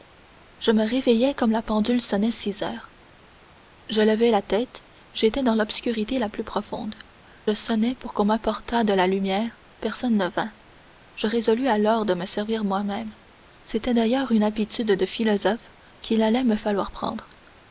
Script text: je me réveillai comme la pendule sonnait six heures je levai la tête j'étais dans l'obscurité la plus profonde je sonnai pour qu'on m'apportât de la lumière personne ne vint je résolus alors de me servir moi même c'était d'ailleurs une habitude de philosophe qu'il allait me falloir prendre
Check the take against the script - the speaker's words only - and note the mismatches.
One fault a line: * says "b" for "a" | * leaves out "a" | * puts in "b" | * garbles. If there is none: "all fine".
* leaves out "je"